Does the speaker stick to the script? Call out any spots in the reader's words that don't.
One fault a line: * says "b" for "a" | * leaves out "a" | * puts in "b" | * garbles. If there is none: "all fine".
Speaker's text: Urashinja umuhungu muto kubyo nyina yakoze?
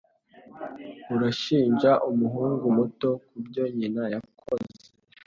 all fine